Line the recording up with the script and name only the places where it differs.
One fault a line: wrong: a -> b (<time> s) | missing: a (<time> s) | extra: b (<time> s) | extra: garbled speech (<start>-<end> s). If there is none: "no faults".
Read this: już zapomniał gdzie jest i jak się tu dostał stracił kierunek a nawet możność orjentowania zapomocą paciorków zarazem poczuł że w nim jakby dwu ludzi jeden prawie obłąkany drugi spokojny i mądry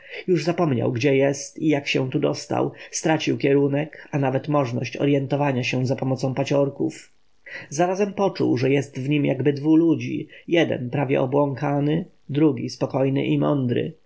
extra: się (5.6 s)
extra: jest (8.7 s)